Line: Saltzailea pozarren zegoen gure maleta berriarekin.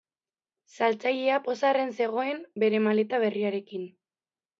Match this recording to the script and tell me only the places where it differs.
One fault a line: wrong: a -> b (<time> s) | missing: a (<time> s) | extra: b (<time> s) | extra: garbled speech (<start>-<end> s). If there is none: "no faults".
wrong: gure -> bere (2.6 s)